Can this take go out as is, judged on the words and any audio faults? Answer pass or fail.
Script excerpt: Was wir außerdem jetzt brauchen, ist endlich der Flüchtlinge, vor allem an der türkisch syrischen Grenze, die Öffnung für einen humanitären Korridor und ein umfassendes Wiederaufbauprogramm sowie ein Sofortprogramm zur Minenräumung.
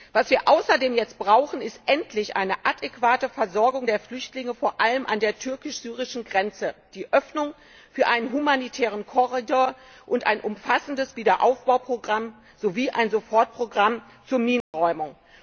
fail